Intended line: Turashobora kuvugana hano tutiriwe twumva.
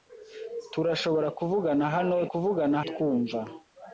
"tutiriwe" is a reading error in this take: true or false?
true